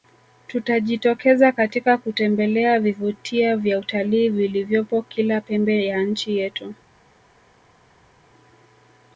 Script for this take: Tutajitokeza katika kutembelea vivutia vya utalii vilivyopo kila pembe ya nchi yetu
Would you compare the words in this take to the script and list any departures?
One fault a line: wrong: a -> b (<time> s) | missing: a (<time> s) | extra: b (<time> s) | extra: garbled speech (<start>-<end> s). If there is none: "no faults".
no faults